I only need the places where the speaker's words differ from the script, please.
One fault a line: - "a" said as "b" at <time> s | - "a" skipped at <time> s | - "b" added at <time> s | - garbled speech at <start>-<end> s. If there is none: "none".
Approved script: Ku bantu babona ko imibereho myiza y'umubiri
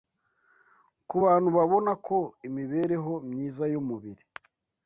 none